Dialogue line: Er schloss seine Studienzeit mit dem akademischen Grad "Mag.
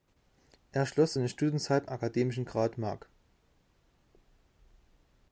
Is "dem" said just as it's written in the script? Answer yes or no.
no